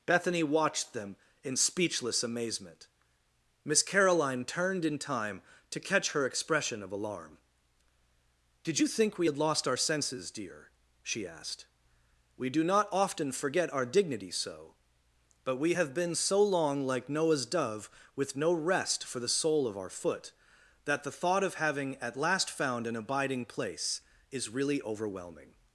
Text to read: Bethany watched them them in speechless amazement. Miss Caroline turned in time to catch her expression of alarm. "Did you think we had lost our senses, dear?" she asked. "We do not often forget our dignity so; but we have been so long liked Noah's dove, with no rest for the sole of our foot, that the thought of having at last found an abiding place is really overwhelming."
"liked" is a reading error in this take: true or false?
true